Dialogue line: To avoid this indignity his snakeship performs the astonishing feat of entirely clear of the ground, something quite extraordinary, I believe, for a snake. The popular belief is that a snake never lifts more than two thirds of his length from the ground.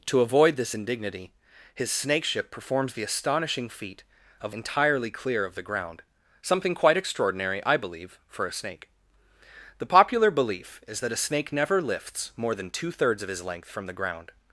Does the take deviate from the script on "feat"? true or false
false